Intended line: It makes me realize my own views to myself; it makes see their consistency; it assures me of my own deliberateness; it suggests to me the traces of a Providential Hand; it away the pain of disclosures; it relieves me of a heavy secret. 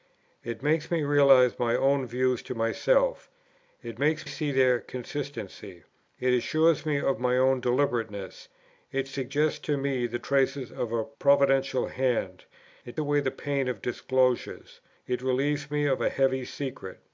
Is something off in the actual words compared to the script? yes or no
no